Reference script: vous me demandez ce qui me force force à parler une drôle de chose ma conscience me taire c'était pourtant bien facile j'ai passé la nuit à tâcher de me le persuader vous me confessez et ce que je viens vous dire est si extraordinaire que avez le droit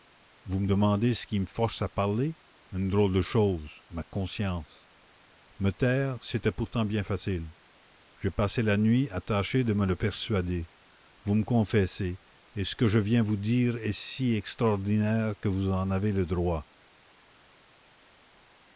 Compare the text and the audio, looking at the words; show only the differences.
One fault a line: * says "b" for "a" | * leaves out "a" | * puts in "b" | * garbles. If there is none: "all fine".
* leaves out "force"
* puts in "vous en"